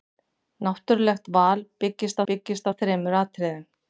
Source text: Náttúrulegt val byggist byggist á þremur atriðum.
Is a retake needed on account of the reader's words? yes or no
no